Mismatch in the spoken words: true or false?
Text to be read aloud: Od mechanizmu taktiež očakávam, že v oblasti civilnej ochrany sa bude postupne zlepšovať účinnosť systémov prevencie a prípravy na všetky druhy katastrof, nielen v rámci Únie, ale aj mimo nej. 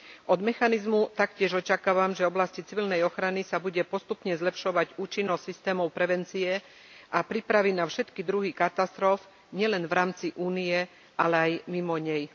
false